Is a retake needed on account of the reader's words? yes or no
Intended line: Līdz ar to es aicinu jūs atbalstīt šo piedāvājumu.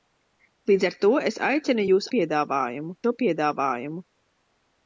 yes